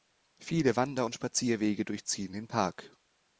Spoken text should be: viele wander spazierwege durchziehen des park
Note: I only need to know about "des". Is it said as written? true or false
false